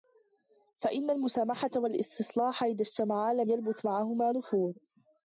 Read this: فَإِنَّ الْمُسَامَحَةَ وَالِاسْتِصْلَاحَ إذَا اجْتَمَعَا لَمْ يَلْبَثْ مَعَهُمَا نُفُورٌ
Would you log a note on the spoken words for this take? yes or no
no